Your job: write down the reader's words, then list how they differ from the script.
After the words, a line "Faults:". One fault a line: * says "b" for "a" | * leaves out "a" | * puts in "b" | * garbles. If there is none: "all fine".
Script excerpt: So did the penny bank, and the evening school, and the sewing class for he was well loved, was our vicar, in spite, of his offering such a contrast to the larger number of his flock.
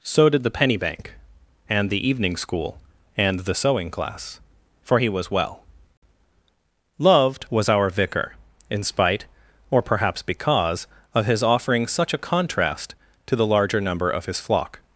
So did the penny bank, and the evening school, and the sewing class for he was well loved, was our vicar, in spite, or perhaps because, of his offering such a contrast to the larger number of his flock.
Faults:
* puts in "or perhaps because"